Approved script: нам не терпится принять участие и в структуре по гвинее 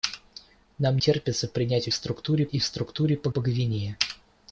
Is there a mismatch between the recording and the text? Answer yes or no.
yes